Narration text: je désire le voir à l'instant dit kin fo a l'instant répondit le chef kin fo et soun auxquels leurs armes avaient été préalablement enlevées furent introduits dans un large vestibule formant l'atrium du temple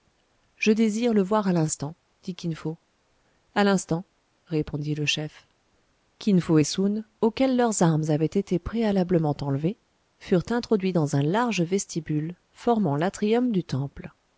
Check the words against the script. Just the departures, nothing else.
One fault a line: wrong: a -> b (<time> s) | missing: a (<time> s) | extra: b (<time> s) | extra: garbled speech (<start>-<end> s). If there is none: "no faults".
no faults